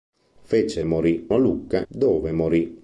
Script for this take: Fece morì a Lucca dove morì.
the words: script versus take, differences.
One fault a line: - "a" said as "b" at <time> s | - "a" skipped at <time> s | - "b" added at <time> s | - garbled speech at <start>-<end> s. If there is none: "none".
none